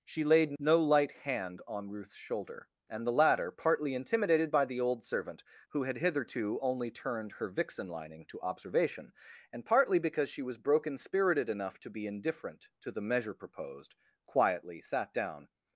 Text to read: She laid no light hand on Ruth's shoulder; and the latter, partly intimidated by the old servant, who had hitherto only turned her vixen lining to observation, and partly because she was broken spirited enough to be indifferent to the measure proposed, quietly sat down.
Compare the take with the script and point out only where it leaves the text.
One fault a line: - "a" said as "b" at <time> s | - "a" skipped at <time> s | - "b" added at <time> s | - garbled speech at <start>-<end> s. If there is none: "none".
none